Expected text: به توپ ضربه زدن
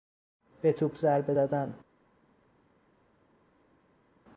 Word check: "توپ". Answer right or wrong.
right